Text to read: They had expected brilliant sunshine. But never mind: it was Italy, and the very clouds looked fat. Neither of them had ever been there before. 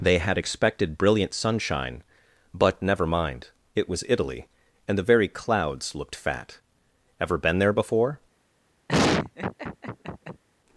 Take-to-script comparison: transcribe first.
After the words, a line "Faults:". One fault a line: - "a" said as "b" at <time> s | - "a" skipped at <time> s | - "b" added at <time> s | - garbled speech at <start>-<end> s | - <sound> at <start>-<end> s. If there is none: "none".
They had expected brilliant sunshine. But never mind: it was Italy, and the very clouds looked fat. ever been there before.
Faults:
- "Neither of them had" skipped at 6.6 s
- laugh at 8.9-10.4 s